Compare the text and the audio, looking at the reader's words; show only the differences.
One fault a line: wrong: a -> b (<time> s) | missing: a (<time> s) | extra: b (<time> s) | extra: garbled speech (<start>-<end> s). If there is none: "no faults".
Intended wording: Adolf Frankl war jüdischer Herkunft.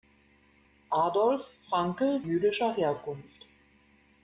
missing: war (2.2 s)